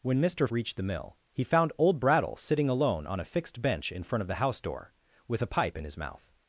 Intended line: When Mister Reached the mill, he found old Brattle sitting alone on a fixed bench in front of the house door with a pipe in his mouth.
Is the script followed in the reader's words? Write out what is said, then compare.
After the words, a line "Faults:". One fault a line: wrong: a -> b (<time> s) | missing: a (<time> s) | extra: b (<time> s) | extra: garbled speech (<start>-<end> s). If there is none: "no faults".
When Mister Reached the mill, he found old Brattle sitting alone on a fixed bench in front of the house door with a pipe in his mouth.
Faults:
no faults